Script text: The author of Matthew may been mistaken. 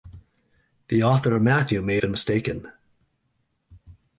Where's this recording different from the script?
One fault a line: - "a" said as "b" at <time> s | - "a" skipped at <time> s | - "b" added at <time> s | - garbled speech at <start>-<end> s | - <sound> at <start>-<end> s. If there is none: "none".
none